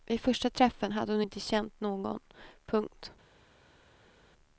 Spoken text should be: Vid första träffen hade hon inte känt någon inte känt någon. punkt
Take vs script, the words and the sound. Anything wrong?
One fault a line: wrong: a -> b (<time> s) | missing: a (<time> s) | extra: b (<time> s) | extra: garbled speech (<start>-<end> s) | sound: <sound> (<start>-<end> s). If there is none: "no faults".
missing: inte känt någon (2.2 s)